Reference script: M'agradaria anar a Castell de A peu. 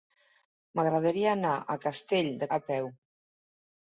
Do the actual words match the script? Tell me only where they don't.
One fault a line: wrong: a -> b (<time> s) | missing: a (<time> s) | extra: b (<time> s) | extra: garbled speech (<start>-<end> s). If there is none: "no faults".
no faults